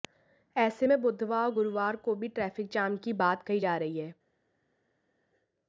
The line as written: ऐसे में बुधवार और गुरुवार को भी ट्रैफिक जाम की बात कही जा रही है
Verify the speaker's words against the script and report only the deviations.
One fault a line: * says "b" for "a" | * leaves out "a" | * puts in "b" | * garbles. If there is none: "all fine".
all fine